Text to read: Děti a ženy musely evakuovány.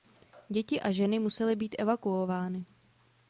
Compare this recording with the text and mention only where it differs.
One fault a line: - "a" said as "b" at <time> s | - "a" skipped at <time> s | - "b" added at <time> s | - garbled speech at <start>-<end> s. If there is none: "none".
- "být" added at 1.6 s